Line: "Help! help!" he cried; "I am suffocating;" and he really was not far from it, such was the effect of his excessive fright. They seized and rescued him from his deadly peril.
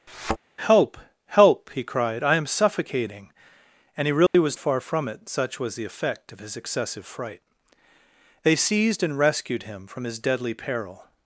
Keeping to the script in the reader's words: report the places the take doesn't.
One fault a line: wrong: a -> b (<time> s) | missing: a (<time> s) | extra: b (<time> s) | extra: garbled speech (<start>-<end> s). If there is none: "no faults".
missing: not (4.6 s)